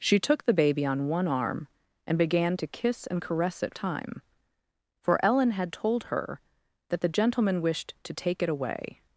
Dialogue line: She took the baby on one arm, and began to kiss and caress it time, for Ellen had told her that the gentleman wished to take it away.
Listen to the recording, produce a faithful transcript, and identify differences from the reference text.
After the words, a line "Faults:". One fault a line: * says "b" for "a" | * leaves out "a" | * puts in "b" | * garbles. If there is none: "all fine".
She took the baby on one arm, and began to kiss and caress it time, for Ellen had told her that the gentleman wished to take it away.
Faults:
all fine